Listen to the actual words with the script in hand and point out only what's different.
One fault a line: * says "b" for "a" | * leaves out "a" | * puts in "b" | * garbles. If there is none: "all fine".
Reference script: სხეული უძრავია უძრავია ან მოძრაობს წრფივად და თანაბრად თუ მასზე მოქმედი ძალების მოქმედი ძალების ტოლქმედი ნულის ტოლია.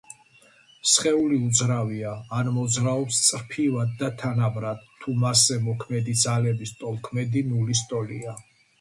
* leaves out "უძრავია"
* leaves out "მოქმედი ძალების"